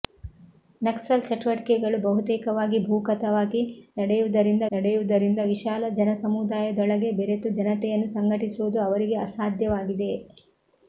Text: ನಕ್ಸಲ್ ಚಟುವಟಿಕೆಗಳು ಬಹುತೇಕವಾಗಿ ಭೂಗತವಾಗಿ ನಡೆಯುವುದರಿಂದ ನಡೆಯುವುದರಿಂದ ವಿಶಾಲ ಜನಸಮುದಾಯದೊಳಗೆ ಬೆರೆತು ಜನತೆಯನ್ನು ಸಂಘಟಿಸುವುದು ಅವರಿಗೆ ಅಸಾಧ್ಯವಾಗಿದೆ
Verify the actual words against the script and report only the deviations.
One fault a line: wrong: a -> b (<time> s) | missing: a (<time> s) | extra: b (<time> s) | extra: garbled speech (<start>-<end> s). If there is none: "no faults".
no faults